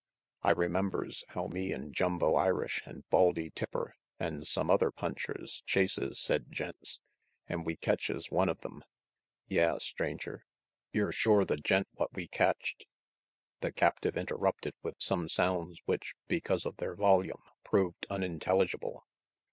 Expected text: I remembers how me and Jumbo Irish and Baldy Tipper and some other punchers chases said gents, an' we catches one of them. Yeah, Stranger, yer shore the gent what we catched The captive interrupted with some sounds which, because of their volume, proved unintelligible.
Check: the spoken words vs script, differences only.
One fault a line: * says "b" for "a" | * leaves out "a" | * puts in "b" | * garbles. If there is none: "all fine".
all fine